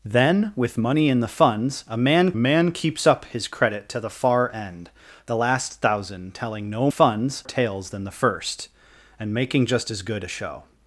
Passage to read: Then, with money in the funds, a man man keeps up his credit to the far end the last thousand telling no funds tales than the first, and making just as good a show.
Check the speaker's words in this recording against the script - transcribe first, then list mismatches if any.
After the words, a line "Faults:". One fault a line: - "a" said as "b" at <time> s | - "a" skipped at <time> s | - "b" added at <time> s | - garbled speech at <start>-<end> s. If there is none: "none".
Then, with money in the funds, a man man keeps up his credit to the far end the last thousand telling no funds tales than the first, and making just as good a show.
Faults:
none